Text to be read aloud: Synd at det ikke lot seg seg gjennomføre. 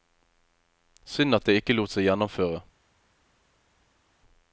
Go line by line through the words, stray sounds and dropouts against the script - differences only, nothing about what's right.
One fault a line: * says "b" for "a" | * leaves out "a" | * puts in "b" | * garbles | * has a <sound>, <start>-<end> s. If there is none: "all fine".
* leaves out "seg"